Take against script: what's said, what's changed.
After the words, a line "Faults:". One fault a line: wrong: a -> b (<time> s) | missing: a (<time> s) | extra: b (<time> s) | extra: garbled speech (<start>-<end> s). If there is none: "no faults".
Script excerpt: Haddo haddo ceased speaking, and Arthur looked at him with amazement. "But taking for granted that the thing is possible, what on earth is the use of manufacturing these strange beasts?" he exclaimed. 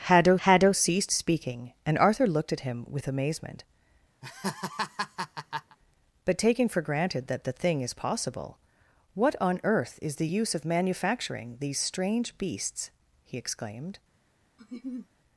Haddo haddo ceased speaking, and Arthur looked at him with amazement. "But taking for granted that the thing is possible, what on earth is the use of manufacturing these strange beasts?" he exclaimed.
Faults:
no faults